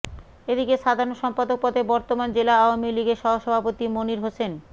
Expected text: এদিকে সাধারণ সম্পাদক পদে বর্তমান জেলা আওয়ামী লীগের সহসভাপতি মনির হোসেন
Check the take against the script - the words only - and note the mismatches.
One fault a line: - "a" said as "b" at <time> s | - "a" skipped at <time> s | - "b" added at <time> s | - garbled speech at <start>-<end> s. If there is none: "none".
none